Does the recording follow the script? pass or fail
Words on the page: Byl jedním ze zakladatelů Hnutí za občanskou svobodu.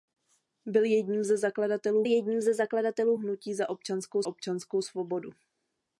fail